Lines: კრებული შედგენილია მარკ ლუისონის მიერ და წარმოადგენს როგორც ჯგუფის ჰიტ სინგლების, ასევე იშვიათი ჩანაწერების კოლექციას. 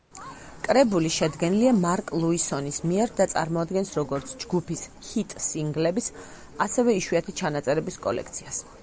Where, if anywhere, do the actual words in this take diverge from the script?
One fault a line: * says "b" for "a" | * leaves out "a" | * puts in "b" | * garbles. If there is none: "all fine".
all fine